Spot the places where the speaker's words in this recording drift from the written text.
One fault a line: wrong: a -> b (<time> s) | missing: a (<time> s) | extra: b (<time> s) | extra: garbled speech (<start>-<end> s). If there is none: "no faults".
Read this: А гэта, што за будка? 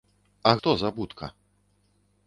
missing: гэта (0.5 s)